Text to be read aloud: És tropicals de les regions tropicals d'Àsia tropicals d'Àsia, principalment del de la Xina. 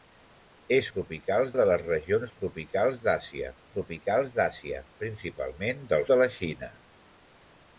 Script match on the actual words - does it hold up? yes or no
yes